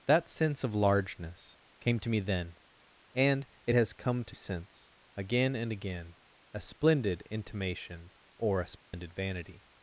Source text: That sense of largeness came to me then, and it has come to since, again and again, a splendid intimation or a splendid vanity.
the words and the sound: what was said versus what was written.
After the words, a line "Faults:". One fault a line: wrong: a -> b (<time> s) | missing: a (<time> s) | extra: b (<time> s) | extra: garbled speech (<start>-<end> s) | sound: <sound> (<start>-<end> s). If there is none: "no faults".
That sense of largeness came to me then, and it has come to since, again and again, a splendid intimation or a splendid vanity.
Faults:
sound: dropout (8.8-8.9 s)